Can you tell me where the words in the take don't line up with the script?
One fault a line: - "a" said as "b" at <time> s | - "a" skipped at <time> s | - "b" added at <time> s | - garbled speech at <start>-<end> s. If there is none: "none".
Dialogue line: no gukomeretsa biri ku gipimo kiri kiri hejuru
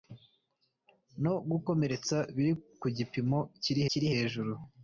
none